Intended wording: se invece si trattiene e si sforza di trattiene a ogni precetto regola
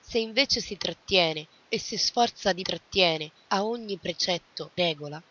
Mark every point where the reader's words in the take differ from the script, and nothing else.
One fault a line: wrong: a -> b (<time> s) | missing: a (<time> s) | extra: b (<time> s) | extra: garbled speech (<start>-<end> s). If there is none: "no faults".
no faults